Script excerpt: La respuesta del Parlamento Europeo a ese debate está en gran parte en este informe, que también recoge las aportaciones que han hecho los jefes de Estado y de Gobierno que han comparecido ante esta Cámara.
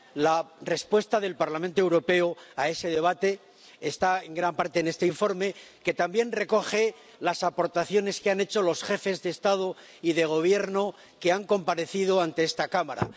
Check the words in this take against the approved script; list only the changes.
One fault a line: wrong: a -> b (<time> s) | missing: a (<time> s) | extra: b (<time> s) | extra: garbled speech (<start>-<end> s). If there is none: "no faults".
no faults